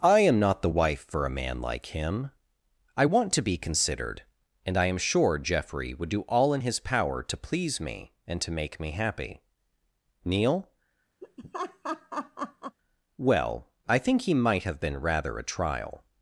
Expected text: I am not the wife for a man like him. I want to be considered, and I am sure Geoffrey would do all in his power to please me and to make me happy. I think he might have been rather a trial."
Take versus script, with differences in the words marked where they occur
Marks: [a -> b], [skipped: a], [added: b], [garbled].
I am not the wife for a man like him. I want to be considered, and I am sure Geoffrey would do all in his power to please me and to make me happy. [added: Neil Well] I think he might have been rather a trial."